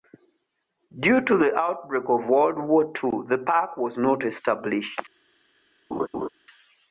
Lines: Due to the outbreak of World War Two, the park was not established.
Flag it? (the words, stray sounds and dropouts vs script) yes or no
yes